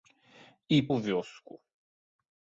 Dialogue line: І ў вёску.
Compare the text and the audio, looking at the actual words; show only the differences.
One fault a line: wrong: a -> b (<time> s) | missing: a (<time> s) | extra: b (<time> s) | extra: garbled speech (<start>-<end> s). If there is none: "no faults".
no faults